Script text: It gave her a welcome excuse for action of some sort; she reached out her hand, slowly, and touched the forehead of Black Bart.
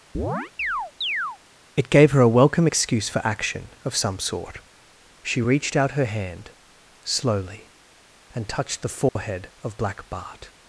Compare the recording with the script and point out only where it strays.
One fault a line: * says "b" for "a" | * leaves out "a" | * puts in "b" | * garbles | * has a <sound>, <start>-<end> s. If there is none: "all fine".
* has a chirp, 0.1-1.4 s
* has a dropout, 9.1-9.2 s